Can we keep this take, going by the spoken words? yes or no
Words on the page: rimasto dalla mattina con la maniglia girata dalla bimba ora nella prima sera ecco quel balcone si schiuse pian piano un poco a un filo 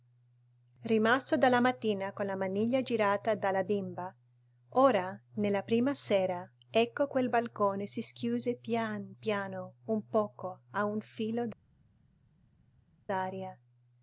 yes